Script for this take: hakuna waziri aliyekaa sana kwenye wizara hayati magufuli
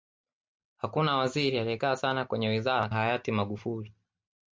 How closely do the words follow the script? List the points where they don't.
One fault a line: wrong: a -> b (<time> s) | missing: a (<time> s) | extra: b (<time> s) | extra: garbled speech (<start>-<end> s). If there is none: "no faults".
no faults